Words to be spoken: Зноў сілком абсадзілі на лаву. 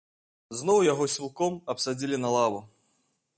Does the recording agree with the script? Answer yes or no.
no